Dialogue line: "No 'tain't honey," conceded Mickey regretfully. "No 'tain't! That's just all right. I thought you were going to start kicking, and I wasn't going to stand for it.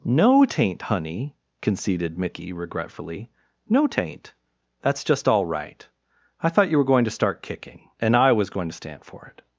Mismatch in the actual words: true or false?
true